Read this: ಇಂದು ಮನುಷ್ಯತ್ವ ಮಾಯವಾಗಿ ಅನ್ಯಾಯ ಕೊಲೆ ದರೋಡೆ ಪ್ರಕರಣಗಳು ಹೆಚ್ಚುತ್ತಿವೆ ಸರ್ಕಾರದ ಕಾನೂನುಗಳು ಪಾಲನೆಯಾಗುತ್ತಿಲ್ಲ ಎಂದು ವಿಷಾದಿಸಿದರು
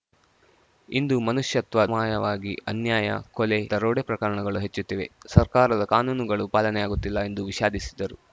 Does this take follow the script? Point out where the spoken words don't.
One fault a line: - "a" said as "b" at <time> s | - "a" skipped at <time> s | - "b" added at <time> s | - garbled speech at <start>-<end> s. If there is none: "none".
none